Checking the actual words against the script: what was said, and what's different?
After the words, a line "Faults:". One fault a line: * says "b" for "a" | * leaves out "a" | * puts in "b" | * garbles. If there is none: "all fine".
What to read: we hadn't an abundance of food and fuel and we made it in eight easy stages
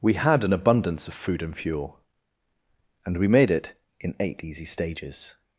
we had an abundance of food and fuel and we made it in eight easy stages
Faults:
* says "had" for "hadn't"